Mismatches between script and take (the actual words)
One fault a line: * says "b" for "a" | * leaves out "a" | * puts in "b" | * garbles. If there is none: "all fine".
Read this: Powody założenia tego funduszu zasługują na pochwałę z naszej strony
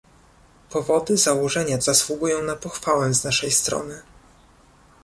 * leaves out "tego funduszu"